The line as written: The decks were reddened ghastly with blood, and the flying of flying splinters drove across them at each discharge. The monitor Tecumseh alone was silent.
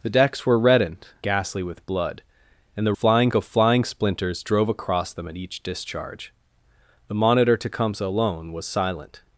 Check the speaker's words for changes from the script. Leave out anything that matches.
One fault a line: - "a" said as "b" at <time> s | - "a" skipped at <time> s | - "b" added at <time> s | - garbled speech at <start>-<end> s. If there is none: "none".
none